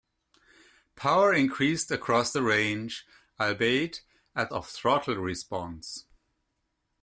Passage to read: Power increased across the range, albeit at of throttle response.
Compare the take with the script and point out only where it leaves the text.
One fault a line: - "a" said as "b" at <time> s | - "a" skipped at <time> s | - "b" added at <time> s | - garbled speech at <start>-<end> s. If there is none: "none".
none